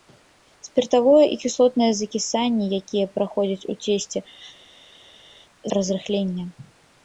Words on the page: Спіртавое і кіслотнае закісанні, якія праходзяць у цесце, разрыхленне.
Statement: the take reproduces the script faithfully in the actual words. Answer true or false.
true